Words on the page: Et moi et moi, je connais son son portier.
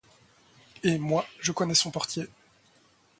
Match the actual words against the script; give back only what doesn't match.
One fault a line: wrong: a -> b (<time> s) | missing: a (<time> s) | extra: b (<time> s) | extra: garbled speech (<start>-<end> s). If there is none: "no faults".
missing: et moi (1.3 s)
missing: son (1.9 s)